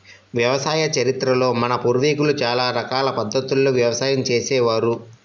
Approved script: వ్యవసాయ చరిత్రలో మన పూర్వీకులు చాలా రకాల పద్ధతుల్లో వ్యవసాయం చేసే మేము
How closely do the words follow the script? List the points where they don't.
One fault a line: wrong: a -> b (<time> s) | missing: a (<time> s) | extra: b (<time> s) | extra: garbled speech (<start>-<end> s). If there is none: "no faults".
wrong: మేము -> వారు (4.7 s)